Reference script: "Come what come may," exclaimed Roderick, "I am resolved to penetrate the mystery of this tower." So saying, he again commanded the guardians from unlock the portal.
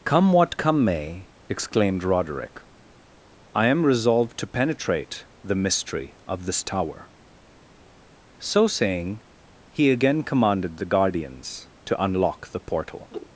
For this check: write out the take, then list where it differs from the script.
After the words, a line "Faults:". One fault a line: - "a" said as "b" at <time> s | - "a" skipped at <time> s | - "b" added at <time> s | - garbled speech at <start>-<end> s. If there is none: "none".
"Come what come may," exclaimed Roderick, "I am resolved to penetrate the mystery of this tower." So saying, he again commanded the guardians to unlock the portal.
Faults:
- "from" said as "to" at 11.8 s